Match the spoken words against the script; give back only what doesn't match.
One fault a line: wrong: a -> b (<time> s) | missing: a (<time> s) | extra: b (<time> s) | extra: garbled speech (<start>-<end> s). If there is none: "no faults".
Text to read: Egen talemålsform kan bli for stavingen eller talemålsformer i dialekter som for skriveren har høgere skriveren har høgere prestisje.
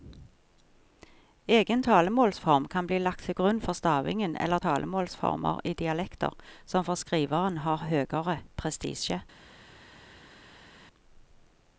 extra: lagt til grunn (3.0 s)
missing: skriveren har høgere (8.4 s)